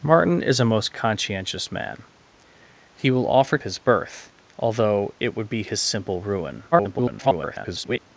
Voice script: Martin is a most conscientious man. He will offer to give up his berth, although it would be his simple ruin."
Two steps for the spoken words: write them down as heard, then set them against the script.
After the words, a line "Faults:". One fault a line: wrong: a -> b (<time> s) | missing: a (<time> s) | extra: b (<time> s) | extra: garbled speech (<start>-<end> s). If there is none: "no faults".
Martin is a most conscientious man. He will offer his berth, although it would be his simple ruin." [garbled]
Faults:
missing: to give up (3.6 s)
extra: garbled speech (6.7-8.0 s)